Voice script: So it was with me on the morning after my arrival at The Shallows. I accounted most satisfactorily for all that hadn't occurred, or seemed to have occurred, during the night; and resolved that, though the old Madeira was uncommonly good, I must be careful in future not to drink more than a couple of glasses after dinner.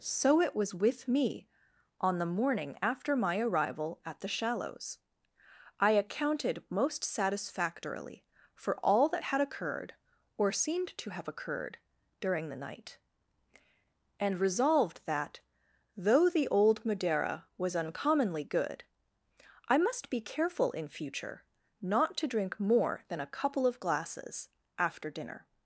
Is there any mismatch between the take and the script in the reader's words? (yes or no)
yes